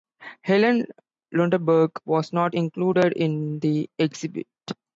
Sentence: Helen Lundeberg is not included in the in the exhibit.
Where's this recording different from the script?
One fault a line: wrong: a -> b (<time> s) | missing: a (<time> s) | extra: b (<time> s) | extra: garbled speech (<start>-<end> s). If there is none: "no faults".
wrong: is -> was (2.0 s)
missing: in the (3.9 s)